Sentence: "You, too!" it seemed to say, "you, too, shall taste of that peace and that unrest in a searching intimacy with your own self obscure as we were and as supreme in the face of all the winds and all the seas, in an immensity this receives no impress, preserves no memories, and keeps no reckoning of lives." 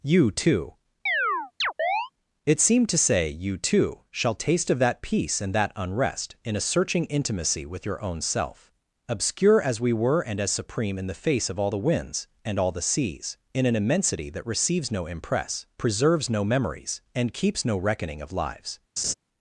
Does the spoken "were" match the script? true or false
true